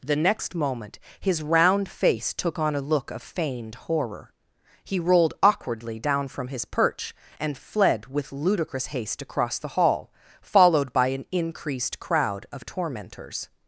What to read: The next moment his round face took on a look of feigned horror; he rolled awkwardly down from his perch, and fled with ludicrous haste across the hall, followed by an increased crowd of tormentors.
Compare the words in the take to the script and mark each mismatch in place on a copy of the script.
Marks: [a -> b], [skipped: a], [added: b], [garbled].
The next moment his round face took on a look of feigned horror; he rolled awkwardly down from his perch, and fled with ludicrous haste across the hall, followed by an increased crowd of tormentors.